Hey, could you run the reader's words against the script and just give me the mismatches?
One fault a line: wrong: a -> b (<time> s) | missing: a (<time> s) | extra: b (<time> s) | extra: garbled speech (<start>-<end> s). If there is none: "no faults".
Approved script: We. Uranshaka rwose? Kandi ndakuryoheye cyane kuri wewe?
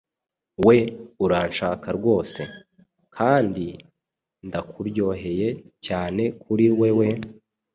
no faults